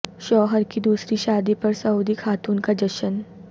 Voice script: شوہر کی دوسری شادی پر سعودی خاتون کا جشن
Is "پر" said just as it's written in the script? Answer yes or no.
yes